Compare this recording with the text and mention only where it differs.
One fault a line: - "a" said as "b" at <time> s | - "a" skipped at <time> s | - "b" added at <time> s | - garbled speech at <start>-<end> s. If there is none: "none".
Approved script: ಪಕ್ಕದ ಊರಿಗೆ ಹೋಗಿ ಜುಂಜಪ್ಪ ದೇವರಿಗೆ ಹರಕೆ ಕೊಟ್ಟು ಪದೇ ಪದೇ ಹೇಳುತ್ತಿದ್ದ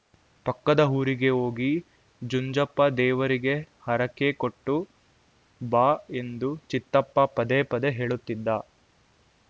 - "ಬಾ ಎಂದು ಚಿತ್ತಪ್ಪ" added at 5.6 s